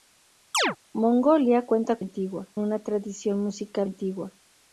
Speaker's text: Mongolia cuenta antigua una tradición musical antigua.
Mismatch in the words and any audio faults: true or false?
true